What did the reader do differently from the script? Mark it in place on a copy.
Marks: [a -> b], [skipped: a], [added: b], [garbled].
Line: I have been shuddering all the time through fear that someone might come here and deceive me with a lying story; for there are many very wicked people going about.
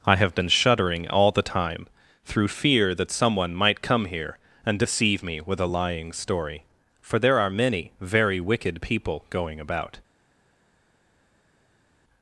I have been shuddering all the time through fear that someone might come here and deceive me with a lying story; for there are many very wicked people going about.